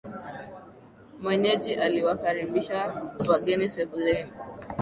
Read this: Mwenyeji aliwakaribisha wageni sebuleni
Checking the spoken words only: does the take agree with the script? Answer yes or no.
yes